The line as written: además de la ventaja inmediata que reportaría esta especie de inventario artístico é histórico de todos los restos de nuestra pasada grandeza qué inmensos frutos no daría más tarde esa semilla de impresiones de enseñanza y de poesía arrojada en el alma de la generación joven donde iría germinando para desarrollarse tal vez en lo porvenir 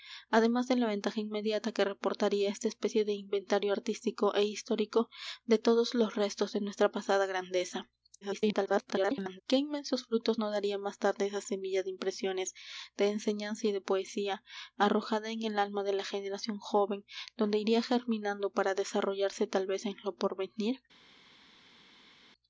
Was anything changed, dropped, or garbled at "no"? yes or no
no